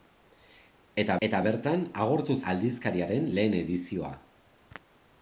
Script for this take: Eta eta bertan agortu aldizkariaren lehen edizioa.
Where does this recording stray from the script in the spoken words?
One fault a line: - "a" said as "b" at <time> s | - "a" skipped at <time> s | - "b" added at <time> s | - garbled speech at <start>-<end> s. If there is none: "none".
none